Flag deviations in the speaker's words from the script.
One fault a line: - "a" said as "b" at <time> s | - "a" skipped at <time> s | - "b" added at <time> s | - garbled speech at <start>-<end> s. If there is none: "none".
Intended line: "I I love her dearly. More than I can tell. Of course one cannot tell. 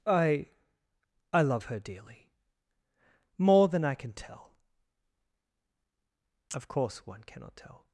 none